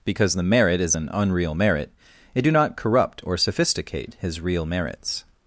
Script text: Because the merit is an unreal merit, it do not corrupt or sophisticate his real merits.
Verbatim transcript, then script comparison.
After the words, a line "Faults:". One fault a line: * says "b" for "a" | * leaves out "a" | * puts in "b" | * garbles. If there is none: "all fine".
Because the merit is an unreal merit, it do not corrupt or sophisticate his real merits.
Faults:
all fine